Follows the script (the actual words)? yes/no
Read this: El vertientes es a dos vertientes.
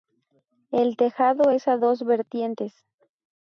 no